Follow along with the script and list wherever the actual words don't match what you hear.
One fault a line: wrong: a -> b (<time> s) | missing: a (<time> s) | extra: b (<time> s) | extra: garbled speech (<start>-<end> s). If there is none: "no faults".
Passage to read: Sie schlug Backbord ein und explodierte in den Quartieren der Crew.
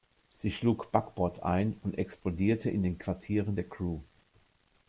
no faults